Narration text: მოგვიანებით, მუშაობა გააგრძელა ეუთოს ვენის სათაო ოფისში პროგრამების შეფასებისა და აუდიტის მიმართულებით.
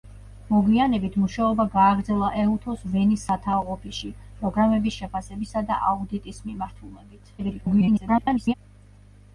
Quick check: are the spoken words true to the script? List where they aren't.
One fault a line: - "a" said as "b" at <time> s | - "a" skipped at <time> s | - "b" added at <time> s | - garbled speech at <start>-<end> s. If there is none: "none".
- garbled speech at 7.4-8.5 s